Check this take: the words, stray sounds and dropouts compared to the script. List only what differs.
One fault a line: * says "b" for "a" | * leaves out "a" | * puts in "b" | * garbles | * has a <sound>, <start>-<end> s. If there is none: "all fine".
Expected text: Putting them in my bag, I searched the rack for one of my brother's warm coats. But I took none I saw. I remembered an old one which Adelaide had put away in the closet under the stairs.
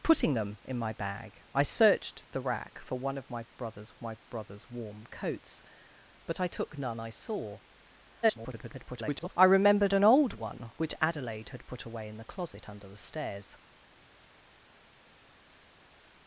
* puts in "of my brother's"
* garbles